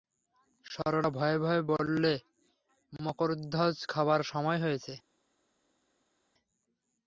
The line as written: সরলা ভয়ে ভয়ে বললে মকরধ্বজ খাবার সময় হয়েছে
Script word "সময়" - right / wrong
right